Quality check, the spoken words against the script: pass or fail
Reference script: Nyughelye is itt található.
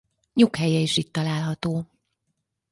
pass